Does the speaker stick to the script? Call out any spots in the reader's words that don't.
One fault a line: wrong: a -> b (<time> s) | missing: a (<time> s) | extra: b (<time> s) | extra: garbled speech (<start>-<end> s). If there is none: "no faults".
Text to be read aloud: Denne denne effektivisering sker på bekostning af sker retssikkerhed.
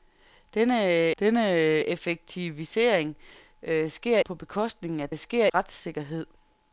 no faults